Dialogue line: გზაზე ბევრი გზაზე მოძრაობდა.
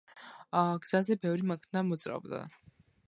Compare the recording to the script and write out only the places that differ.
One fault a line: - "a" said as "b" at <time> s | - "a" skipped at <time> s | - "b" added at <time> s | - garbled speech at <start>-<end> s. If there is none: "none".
- "გზაზე" said as "მანქანა" at 1.5 s